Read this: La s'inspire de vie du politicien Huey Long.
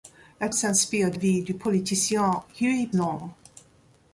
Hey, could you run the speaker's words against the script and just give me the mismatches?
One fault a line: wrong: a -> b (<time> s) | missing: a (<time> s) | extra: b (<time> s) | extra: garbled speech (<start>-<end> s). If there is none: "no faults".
no faults